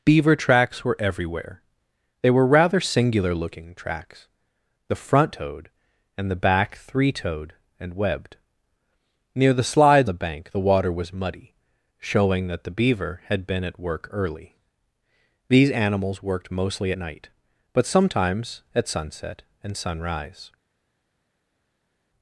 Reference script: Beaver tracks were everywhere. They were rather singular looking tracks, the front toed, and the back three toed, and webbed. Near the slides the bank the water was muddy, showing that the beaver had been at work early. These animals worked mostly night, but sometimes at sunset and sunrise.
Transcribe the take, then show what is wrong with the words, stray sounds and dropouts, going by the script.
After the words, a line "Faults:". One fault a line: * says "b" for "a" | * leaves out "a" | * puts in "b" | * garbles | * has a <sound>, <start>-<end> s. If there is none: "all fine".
Beaver tracks were everywhere. They were rather singular looking tracks, the front toed, and the back three toed, and webbed. Near the slides the bank the water was muddy, showing that the beaver had been at work early. These animals worked mostly night, but sometimes at sunset and sunrise.
Faults:
all fine